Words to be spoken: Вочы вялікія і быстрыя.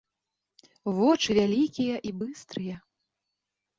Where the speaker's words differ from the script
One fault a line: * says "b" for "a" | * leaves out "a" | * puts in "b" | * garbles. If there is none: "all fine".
all fine